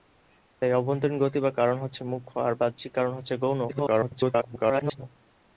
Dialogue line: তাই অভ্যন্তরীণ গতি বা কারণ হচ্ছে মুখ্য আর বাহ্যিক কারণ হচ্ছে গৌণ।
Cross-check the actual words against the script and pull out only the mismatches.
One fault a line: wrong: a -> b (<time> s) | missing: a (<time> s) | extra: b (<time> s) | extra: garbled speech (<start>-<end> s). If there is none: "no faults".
extra: garbled speech (3.7-5.0 s)